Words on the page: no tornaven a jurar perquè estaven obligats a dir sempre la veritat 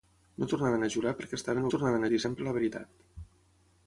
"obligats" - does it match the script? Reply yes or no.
no